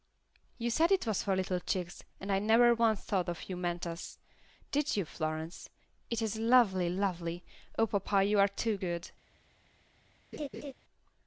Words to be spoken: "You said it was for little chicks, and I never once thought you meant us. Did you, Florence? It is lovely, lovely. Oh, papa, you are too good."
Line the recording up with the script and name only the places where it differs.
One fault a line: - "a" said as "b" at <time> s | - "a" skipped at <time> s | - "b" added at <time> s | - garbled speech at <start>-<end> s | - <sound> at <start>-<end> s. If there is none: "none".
- laugh at 10.3-10.7 s